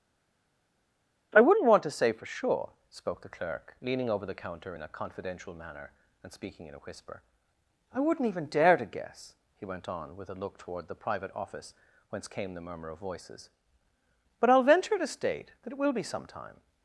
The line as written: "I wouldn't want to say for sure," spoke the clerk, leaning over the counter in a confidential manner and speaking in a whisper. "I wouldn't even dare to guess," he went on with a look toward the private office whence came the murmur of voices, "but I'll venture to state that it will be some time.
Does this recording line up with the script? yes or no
yes